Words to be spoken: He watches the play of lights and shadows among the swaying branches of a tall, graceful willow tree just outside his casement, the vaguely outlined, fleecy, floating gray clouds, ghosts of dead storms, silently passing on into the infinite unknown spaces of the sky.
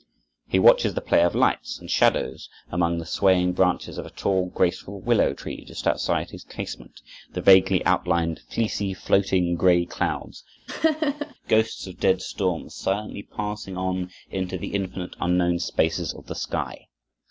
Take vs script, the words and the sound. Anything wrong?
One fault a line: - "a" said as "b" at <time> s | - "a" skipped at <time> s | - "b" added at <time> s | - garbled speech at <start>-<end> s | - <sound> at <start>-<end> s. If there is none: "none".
- laugh at 10.7-11.3 s